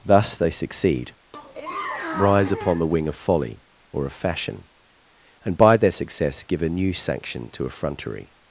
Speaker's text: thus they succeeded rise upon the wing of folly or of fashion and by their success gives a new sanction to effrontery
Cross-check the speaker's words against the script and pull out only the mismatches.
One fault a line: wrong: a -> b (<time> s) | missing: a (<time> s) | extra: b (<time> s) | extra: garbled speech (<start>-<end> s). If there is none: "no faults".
wrong: succeeded -> succeed (0.5 s)
wrong: gives -> give (6.4 s)